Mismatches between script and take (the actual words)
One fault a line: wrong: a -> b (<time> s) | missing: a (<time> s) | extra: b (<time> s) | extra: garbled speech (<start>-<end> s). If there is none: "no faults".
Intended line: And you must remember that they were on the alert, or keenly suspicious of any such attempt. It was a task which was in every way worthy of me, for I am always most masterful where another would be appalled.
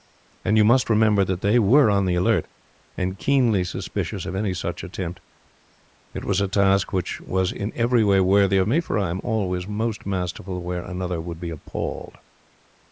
wrong: or -> and (3.0 s)